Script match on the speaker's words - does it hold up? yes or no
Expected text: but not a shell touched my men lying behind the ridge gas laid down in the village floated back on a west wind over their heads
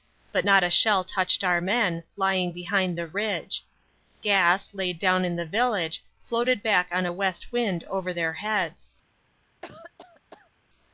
no